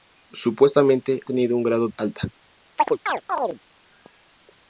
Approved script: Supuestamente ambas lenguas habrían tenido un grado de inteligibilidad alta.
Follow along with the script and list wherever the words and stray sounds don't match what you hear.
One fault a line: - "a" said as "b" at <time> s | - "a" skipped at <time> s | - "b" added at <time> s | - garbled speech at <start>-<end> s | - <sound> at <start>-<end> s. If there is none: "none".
- "ambas lenguas habrían" skipped at 1.2 s
- "de inteligibilidad" skipped at 1.9 s
- chirp at 2.8-3.6 s